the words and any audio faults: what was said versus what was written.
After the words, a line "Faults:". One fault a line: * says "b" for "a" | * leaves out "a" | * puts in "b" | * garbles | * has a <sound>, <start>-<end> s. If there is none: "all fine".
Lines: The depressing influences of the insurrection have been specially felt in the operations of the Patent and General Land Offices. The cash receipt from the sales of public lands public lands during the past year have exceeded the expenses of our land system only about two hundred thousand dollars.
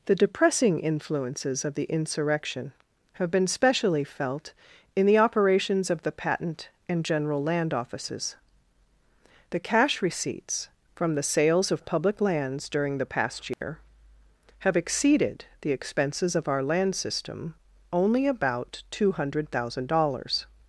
The depressing influences of the insurrection have been specially felt in the operations of the Patent and General Land Offices. The cash receipts from the sales of public lands during the past year have exceeded the expenses of our land system only about two hundred thousand dollars.
Faults:
* says "receipts" for "receipt"
* leaves out "public lands"
* has a dropout, 13.5-13.6 s